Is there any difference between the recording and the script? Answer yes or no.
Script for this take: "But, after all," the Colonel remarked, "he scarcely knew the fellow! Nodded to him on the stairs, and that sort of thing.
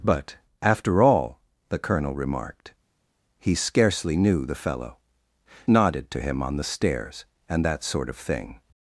no